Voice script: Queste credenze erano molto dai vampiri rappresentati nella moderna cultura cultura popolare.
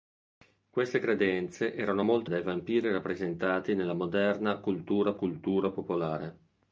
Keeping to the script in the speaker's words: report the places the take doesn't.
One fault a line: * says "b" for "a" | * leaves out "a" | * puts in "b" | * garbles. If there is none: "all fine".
all fine